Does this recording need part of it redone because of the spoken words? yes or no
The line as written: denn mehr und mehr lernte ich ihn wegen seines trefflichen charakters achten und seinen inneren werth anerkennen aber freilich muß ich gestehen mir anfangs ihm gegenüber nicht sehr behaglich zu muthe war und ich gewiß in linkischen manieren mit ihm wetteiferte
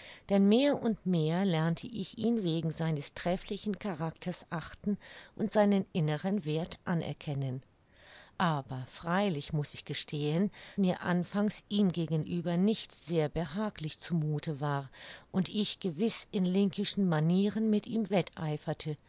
no